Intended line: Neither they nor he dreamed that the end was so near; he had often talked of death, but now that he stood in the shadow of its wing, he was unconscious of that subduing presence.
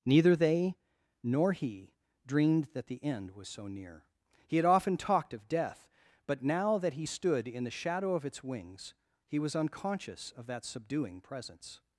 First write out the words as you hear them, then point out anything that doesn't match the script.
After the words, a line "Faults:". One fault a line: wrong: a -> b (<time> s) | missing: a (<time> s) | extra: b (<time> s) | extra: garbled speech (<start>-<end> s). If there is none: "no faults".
Neither they nor he dreamed that the end was so near; he had often talked of death, but now that he stood in the shadow of its wings, he was unconscious of that subduing presence.
Faults:
wrong: wing -> wings (8.4 s)